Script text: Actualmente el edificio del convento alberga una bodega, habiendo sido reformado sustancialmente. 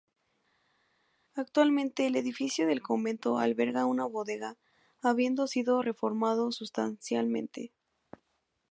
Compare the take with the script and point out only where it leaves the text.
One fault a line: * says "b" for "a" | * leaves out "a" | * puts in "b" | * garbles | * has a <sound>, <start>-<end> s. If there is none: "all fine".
all fine